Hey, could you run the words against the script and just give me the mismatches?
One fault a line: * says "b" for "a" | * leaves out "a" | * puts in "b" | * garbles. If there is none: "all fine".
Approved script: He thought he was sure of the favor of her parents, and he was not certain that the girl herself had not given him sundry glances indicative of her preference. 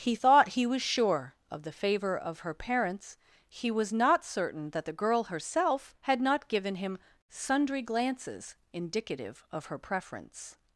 * leaves out "and"